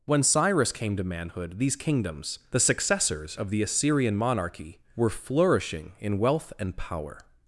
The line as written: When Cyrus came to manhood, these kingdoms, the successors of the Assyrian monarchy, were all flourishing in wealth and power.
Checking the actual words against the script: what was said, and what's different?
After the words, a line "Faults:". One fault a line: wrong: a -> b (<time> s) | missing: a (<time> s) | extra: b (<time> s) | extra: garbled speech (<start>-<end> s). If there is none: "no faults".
When Cyrus came to manhood, these kingdoms, the successors of the Assyrian monarchy, were flourishing in wealth and power.
Faults:
missing: all (5.1 s)